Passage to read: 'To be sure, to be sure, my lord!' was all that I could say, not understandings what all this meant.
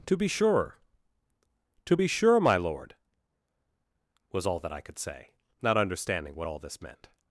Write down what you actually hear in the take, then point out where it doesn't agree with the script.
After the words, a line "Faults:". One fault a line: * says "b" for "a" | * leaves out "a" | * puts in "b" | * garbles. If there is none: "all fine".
'To be sure, to be sure, my lord!' was all that I could say, not understanding what all this meant.
Faults:
* says "understanding" for "understandings"